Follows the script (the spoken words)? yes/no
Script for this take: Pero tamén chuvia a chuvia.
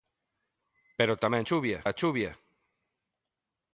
yes